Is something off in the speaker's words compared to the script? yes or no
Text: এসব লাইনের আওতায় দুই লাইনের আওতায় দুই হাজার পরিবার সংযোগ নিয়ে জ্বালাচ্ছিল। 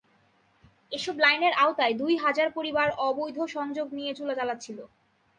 yes